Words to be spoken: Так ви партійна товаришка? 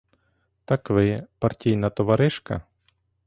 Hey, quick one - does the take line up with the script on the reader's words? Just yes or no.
yes